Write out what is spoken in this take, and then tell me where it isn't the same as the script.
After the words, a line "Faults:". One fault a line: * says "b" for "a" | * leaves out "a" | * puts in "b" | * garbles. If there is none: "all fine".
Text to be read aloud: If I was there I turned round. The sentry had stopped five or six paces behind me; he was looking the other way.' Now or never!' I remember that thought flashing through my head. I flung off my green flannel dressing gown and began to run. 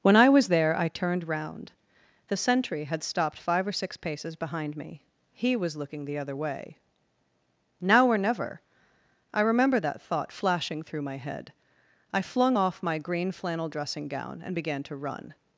When I was there I turned round. The sentry had stopped five or six paces behind me; he was looking the other way.' Now or never!' I remember that thought flashing through my head. I flung off my green flannel dressing gown and began to run.
Faults:
* says "When" for "If"